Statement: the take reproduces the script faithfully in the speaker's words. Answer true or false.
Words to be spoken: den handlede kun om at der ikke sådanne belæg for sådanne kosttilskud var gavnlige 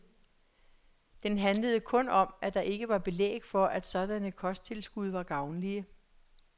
false